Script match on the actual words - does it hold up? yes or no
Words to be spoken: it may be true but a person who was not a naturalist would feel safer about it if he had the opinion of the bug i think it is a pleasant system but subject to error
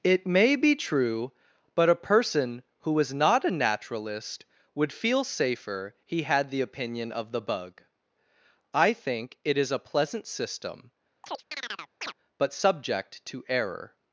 no